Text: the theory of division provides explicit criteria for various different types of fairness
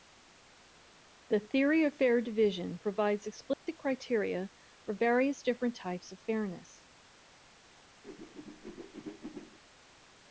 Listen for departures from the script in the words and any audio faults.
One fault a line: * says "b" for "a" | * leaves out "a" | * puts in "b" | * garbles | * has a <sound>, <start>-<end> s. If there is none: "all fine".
* puts in "fair"
* has a dropout, 3.5-3.7 s
* has a whoosh, 8.0-9.6 s